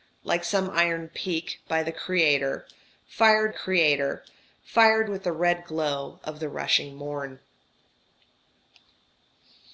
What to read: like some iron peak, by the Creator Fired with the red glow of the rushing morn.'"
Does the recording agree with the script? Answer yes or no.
no